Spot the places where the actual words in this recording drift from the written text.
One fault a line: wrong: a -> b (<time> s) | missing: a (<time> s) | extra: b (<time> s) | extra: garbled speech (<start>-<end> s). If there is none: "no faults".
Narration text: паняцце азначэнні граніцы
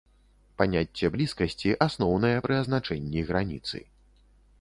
extra: блізкасці асноўнае пры (1.2 s)